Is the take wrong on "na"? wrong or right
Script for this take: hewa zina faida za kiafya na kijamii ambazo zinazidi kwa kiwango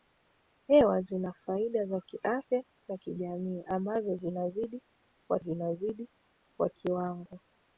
right